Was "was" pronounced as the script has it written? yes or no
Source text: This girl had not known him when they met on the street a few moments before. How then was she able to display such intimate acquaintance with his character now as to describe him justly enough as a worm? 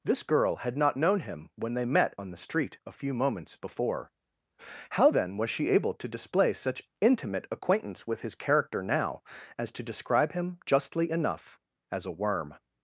yes